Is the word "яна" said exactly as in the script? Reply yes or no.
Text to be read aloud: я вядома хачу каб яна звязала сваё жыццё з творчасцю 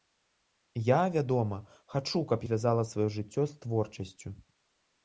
no